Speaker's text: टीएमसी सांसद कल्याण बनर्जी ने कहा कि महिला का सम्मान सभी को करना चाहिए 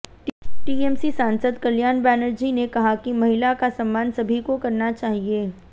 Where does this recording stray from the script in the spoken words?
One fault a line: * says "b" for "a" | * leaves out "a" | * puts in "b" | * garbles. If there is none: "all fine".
all fine